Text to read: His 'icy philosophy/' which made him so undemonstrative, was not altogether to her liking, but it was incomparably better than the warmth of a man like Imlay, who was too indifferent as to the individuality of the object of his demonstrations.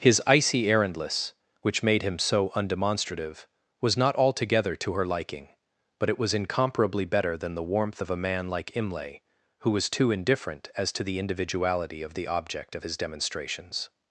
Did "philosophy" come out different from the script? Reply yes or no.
yes